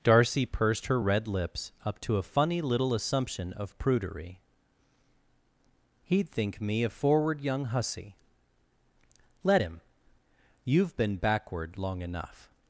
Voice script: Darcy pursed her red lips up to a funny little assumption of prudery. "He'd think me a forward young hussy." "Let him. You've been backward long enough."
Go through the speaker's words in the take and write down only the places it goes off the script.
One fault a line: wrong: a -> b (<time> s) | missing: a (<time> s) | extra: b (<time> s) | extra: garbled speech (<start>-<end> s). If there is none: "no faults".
no faults